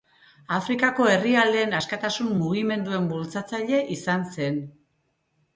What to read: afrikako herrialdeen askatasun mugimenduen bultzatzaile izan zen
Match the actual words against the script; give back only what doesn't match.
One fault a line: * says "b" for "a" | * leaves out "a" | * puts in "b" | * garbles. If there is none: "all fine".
all fine